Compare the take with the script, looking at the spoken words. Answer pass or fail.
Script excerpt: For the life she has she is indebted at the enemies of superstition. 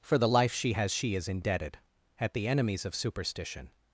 pass